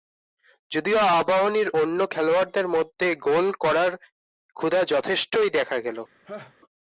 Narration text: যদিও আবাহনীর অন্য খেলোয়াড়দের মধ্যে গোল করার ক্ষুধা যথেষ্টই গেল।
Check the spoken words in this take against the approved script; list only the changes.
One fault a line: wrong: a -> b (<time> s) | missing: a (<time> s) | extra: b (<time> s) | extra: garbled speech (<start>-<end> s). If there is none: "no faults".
extra: দেখা (5.6 s)